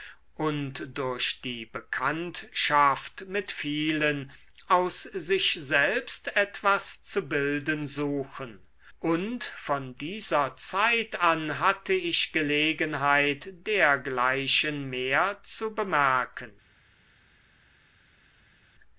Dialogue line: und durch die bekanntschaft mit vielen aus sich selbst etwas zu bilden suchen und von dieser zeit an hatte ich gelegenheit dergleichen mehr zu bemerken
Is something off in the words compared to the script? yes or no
no